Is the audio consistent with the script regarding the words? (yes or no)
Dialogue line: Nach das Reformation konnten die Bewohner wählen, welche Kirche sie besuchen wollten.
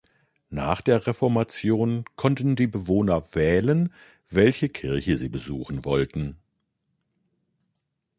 no